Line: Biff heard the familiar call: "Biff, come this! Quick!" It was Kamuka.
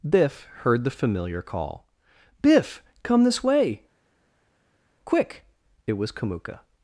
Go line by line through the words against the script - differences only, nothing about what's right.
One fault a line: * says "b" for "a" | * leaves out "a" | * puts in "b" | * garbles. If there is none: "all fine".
* puts in "way"